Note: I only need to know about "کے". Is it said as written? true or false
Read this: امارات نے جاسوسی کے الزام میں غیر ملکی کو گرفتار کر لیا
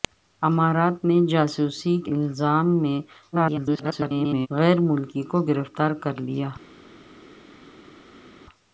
false